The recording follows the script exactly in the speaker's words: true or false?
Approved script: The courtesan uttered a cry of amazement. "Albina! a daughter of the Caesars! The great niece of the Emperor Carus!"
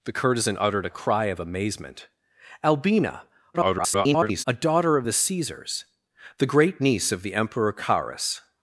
false